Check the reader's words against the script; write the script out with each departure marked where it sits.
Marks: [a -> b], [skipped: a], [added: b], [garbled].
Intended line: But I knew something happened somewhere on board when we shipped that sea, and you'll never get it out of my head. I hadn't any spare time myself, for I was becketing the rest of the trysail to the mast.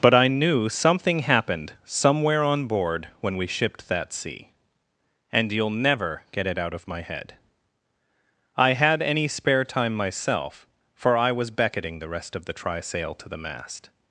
But I knew something happened somewhere on board when we shipped that sea, and you'll never get it out of my head. I [hadn't -> had] any spare time myself, for I was becketing the rest of the trysail to the mast.